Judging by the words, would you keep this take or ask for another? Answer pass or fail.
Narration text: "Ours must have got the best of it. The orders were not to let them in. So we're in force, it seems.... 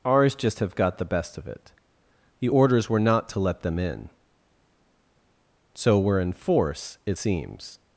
fail